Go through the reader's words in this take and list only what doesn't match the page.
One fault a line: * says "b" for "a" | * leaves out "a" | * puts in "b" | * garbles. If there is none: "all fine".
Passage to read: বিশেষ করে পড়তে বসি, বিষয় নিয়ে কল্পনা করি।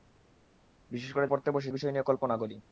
all fine